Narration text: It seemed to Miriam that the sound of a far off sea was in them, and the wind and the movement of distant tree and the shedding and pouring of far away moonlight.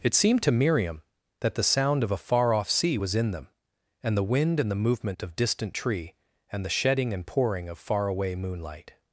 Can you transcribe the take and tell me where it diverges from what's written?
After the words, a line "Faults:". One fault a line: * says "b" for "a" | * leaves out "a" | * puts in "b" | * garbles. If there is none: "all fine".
It seemed to Miriam that the sound of a far off sea was in them, and the wind and the movement of distant tree and the shedding and pouring of far away moonlight.
Faults:
all fine